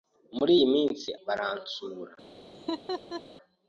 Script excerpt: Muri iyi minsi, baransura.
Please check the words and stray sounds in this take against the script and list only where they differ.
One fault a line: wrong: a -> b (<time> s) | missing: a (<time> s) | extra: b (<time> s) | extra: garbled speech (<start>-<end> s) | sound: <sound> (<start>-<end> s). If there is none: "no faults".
sound: laugh (2.5-3.2 s)